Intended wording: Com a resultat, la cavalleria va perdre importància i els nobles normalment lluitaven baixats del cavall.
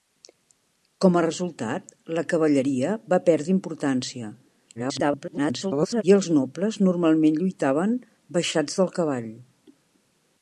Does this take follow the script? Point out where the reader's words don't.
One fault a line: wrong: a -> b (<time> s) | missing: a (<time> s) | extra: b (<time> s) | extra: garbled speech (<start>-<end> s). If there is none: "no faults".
extra: garbled speech (4.7-6.0 s)